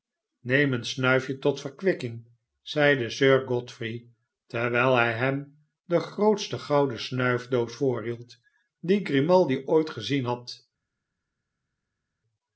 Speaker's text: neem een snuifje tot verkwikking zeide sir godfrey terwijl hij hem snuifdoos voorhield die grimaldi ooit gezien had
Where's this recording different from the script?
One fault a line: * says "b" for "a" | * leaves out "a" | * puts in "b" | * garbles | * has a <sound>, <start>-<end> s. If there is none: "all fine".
* puts in "de grootste gouden"